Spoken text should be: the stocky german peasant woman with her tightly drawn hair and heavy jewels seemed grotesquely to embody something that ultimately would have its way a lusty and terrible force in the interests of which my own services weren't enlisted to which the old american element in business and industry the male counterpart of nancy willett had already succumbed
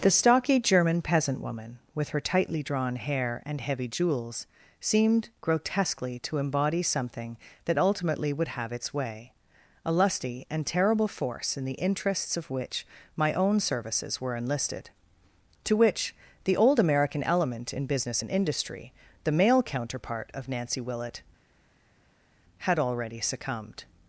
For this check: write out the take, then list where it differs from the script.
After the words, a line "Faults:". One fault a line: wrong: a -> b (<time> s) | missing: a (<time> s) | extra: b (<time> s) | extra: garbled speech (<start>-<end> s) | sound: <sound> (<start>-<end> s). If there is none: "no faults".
the stocky german peasant woman with her tightly drawn hair and heavy jewels seemed grotesquely to embody something that ultimately would have its way a lusty and terrible force in the interests of which my own services were enlisted to which the old american element in business and industry the male counterpart of nancy willett had already succumbed
Faults:
wrong: weren't -> were (14.2 s)